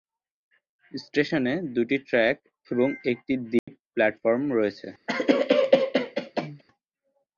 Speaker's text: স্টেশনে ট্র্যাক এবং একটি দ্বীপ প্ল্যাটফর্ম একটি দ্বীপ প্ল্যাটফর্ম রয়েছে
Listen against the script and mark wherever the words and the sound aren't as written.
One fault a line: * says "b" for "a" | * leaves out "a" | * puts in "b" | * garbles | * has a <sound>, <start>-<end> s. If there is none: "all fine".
* puts in "দুটি"
* has a dropout, 3.6-3.7 s
* leaves out "একটি দ্বীপ প্ল্যাটফর্ম"
* has a cough, 5.1-6.6 s